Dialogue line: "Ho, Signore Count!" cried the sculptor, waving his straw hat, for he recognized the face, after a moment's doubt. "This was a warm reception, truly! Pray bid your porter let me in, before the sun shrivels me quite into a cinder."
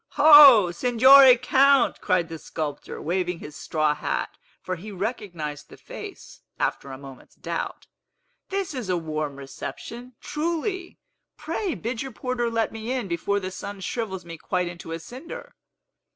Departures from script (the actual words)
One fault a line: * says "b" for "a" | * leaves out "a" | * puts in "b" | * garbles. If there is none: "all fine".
* says "is" for "was"